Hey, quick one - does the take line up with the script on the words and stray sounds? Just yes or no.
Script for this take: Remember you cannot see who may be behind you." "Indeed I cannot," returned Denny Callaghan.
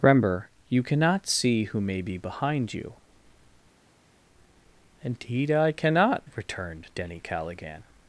yes